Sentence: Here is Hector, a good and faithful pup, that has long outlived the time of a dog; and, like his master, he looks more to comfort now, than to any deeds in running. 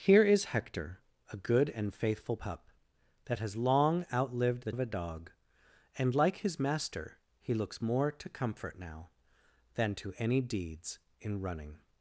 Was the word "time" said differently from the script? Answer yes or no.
yes